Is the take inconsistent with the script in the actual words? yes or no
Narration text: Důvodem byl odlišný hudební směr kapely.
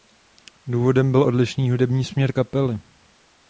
no